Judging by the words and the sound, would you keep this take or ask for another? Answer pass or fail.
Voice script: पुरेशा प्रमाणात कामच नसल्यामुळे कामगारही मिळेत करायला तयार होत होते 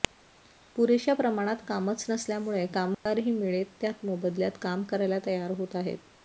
fail